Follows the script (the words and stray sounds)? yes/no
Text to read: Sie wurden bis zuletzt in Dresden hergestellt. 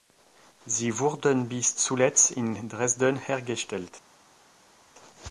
yes